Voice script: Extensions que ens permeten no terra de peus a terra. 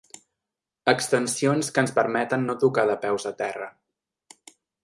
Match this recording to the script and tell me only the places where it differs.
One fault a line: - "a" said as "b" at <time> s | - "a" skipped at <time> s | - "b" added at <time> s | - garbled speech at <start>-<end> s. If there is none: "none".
- "terra" said as "tocar" at 2.7 s